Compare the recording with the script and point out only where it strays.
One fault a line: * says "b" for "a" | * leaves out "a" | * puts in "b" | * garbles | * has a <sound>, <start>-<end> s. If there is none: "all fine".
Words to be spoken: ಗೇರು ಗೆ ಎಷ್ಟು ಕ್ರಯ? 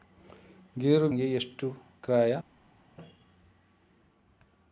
all fine